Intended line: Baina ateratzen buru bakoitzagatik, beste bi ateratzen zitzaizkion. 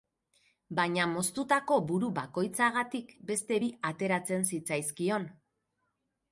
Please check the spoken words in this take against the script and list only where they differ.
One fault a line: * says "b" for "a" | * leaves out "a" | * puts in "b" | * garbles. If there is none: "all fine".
* says "moztutako" for "ateratzen"